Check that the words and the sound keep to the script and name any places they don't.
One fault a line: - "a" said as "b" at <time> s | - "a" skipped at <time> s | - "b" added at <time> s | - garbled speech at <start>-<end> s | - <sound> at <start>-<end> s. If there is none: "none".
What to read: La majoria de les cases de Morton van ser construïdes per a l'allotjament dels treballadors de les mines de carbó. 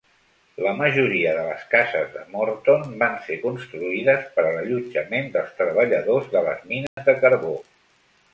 - dropout at 6.9-7.0 s